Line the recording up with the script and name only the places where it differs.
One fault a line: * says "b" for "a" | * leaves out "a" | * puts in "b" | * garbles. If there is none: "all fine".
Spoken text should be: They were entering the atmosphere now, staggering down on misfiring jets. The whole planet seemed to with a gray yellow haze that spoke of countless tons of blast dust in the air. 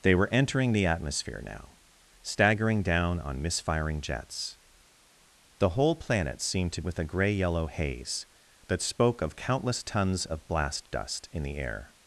all fine